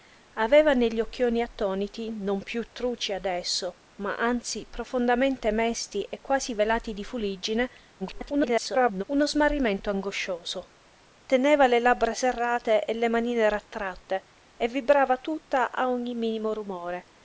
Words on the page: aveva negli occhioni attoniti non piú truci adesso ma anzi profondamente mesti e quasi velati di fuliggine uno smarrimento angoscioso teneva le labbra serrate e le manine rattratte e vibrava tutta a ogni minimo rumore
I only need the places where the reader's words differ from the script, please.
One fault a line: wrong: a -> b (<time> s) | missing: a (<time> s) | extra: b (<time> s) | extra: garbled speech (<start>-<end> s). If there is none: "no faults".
extra: garbled speech (8.0-9.0 s)